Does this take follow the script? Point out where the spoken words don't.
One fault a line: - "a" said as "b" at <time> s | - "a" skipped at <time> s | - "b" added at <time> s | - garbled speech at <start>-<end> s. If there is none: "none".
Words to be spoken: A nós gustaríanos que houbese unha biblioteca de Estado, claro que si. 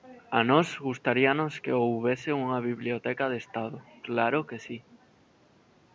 none